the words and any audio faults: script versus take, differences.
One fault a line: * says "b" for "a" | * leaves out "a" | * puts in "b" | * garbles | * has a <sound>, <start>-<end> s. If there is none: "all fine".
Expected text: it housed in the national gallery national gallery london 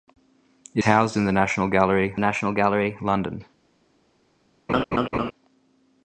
* has a laugh, 4.7-5.3 s